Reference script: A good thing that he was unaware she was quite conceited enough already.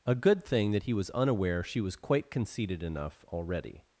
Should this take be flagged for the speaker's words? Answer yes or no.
no